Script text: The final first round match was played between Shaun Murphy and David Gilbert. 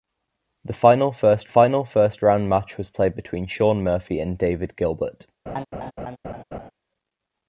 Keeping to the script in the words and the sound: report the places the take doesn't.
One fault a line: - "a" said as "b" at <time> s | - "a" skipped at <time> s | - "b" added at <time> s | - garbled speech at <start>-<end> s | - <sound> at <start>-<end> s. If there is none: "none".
- "final first" added at 1.5 s
- laugh at 5.5-6.7 s